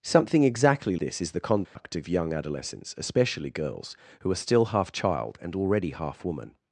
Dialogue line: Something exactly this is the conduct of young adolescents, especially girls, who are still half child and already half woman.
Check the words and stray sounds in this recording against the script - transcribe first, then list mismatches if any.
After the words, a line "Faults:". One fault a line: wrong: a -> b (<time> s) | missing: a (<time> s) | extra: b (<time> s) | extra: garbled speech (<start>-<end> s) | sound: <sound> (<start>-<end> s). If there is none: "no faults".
Something exactly this is the conduct of young adolescents, especially girls, who are still half child and already half woman.
Faults:
sound: dropout (1.6-1.8 s)